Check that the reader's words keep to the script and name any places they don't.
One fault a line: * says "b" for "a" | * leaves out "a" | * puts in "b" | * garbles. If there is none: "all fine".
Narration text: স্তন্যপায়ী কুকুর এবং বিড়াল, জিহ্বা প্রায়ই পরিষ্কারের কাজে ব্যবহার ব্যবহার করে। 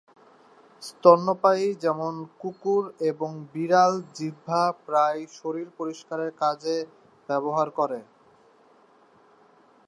* puts in "যেমন"
* puts in "শরীর"
* leaves out "ব্যবহার"